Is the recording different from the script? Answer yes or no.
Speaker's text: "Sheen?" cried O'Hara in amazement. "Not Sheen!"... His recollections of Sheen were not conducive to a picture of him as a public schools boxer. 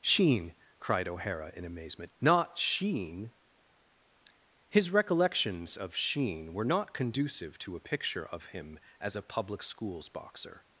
no